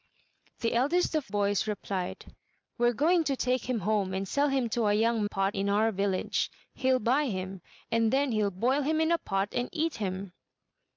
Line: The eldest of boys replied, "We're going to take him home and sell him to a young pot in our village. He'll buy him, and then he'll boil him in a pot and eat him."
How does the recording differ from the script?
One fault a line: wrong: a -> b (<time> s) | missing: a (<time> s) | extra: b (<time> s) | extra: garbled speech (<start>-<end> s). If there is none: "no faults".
no faults